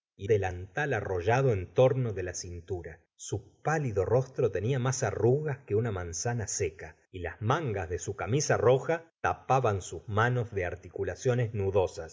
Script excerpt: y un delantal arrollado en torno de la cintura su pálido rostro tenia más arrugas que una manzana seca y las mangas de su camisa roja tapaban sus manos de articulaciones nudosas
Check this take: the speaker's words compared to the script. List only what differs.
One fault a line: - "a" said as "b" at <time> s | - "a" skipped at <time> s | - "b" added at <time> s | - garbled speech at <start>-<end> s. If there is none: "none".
- "un" skipped at 0.3 s